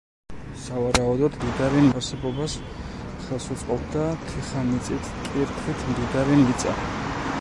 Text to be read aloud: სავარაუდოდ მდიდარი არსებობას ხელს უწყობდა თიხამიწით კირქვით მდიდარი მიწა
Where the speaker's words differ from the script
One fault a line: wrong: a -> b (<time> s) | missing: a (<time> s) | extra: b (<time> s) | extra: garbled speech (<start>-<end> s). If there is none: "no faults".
no faults